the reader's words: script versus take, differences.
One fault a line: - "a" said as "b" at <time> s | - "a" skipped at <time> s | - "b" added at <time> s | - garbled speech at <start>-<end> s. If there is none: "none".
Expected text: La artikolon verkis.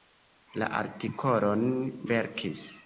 none